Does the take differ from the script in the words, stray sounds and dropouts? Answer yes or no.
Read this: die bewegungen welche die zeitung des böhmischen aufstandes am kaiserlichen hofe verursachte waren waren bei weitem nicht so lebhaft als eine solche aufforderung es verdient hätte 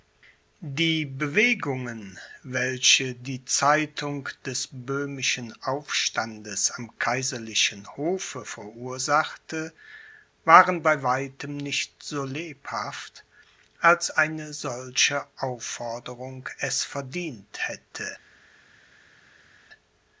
yes